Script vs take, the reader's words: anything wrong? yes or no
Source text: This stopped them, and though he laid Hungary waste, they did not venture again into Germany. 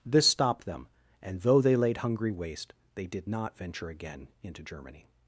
yes